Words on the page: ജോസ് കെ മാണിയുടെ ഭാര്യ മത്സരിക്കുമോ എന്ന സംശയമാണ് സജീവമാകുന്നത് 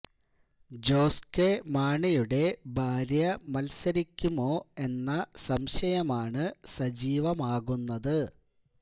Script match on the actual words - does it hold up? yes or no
yes